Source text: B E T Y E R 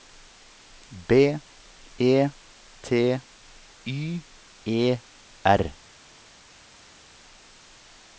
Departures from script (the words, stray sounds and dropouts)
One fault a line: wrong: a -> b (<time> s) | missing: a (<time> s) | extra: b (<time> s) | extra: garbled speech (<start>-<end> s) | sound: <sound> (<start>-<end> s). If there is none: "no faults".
no faults